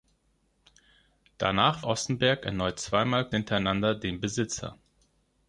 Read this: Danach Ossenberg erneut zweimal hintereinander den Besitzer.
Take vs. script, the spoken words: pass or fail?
pass